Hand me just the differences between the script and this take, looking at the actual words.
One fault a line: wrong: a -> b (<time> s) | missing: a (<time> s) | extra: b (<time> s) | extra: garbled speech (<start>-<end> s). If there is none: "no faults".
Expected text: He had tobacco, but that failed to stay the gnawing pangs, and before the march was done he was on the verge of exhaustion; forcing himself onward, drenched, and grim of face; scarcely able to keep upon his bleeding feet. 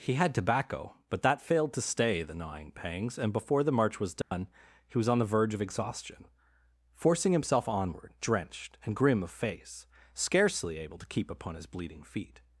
no faults